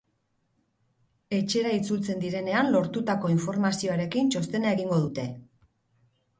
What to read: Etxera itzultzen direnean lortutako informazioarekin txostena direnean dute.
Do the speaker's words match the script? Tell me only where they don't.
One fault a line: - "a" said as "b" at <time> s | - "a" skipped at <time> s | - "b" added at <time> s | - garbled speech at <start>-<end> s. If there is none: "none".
- "direnean" said as "egingo" at 4.8 s